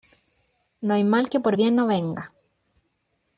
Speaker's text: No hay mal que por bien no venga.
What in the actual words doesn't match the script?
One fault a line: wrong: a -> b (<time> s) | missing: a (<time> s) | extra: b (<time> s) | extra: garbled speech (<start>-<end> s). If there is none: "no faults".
no faults